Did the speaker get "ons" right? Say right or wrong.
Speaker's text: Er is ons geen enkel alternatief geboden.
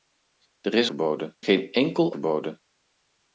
wrong